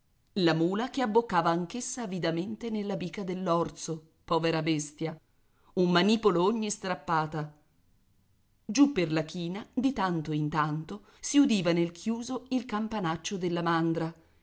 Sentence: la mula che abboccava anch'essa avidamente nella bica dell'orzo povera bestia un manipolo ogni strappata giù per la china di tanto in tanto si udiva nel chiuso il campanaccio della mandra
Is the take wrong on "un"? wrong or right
right